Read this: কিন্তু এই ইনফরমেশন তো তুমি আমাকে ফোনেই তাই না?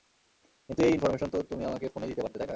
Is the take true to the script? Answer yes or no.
no